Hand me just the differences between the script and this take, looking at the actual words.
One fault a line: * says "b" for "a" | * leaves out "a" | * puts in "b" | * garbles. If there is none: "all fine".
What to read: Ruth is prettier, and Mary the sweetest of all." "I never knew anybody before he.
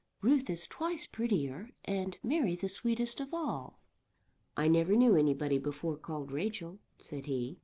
* puts in "twice"
* puts in "called Rachel said"